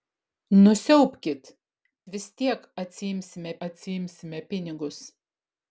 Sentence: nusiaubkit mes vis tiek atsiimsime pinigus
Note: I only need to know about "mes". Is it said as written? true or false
false